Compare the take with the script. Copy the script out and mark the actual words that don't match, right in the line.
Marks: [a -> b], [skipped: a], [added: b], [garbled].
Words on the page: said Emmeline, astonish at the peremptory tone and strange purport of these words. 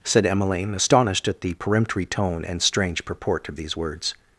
said Emmeline, [astonish -> astonished] at the peremptory tone and strange purport of these words.